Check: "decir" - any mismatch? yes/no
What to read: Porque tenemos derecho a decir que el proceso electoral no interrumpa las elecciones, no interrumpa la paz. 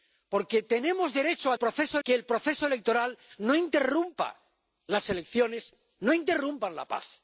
yes